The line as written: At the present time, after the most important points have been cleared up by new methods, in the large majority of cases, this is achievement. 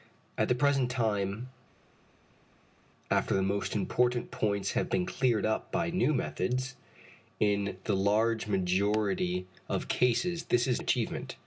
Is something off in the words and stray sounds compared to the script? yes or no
no